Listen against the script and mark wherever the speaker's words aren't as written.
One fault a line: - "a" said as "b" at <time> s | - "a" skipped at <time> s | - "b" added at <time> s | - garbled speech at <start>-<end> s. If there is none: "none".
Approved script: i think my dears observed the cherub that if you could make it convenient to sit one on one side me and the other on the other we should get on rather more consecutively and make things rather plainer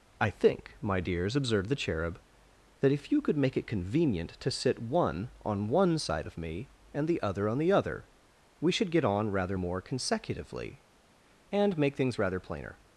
- "of" added at 6.2 s